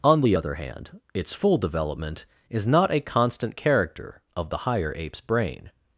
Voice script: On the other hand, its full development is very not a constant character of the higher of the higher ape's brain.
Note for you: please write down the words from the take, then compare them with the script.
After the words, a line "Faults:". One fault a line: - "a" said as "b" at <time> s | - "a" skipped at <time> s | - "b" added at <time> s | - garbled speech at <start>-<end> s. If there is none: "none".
On the other hand, its full development is not a constant character of the higher ape's brain.
Faults:
- "very" skipped at 2.7 s
- "of the higher" skipped at 4.9 s